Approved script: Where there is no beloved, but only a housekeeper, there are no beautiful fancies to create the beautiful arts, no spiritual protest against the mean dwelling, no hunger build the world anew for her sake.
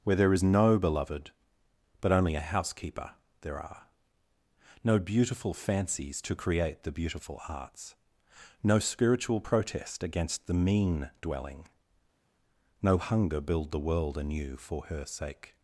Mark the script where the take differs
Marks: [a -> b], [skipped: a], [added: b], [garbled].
Where there is no beloved, but only a housekeeper, there are no beautiful fancies to create the beautiful arts, no spiritual protest against the mean dwelling, no hunger build the world anew for her sake.